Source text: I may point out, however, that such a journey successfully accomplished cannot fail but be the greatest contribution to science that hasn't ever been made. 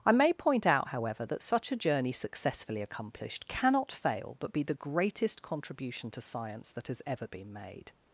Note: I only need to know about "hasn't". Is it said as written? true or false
false